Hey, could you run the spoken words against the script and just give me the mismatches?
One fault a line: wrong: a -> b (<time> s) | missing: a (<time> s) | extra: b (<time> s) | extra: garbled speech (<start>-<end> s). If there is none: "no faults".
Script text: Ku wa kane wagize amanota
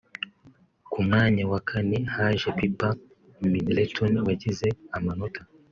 extra: mwanya (1.1 s)
extra: haje Pipa Middleton (2.1 s)